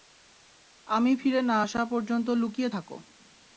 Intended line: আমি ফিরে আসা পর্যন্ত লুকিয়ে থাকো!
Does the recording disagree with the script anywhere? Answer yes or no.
yes